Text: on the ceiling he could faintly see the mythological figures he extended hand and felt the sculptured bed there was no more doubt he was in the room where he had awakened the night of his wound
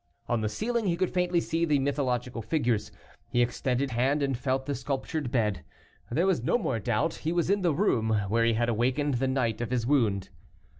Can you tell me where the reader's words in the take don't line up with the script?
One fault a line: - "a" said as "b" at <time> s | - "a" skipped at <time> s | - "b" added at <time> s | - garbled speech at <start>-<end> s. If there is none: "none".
none